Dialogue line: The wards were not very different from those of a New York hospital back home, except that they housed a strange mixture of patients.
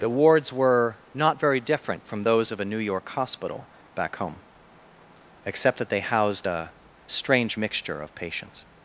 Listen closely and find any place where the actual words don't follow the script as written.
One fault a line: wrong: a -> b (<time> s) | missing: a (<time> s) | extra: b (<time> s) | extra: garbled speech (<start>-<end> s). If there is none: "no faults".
no faults